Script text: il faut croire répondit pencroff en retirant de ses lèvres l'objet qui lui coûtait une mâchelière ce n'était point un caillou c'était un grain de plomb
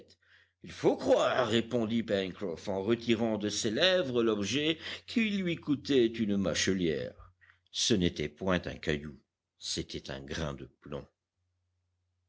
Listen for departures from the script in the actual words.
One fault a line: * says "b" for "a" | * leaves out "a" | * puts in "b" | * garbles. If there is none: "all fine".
all fine